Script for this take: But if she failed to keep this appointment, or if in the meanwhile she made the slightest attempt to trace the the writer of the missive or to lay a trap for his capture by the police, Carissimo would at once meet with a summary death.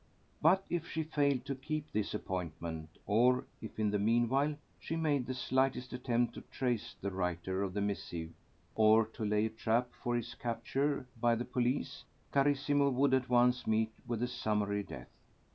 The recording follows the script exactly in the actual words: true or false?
false